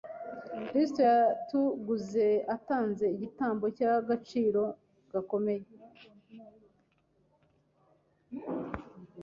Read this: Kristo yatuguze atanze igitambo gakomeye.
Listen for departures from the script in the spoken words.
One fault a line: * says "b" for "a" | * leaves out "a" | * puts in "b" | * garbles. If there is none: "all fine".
* puts in "cy'agaciro"